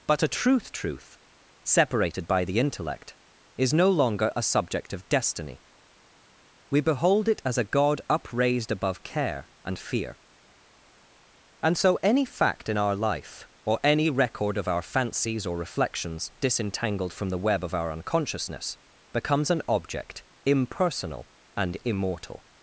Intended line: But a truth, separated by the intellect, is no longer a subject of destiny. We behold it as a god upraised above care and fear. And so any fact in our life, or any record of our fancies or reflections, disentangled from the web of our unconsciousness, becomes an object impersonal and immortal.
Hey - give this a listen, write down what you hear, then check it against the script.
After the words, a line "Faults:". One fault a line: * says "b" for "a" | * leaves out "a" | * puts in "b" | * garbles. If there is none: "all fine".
But a truth truth, separated by the intellect, is no longer a subject of destiny. We behold it as a god upraised above care and fear. And so any fact in our life, or any record of our fancies or reflections, disentangled from the web of our unconsciousness, becomes an object impersonal and immortal.
Faults:
* puts in "truth"